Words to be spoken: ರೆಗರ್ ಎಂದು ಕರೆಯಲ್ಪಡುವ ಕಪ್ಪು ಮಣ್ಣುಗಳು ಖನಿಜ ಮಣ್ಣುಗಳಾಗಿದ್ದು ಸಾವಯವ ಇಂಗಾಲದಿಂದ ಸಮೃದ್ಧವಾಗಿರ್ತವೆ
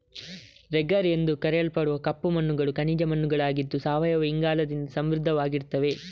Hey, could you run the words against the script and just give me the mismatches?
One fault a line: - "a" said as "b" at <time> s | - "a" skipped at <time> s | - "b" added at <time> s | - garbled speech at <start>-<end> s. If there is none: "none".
none